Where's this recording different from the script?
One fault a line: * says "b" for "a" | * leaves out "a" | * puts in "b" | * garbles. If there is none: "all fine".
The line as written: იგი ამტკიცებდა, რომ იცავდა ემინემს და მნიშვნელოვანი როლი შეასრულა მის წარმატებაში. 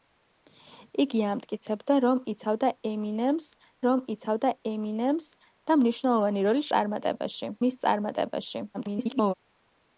* puts in "რომ იცავდა ემინემს"
* says "წარმატებაში" for "შეასრულა"
* garbles